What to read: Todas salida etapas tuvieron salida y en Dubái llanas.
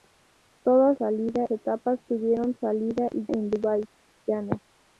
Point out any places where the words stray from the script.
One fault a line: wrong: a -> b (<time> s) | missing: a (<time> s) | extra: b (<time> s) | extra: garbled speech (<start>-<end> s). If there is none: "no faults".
no faults